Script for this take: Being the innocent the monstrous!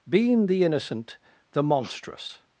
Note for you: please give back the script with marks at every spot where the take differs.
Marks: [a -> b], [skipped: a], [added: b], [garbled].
Being the innocent the monstrous!